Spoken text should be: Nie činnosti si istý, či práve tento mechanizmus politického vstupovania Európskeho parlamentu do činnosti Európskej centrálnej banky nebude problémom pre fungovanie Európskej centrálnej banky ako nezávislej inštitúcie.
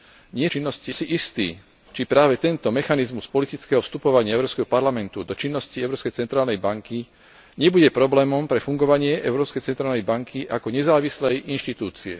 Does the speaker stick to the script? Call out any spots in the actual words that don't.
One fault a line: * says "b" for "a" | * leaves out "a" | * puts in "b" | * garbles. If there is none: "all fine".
all fine